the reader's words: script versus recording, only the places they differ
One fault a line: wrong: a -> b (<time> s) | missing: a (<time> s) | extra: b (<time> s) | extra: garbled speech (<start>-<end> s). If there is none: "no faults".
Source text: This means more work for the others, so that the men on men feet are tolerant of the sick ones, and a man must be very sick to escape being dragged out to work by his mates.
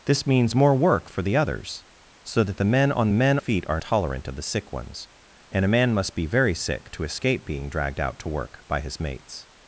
no faults